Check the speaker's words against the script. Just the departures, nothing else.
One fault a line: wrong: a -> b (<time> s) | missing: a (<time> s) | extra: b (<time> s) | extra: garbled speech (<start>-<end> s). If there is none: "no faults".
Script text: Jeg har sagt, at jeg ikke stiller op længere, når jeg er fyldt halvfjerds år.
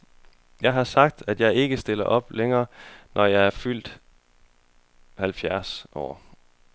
no faults